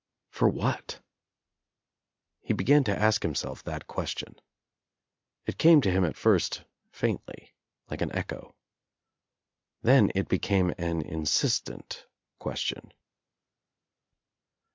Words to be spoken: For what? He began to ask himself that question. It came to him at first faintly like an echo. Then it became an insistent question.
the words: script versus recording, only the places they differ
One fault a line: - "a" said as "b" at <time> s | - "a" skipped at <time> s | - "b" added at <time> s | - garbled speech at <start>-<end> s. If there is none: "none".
none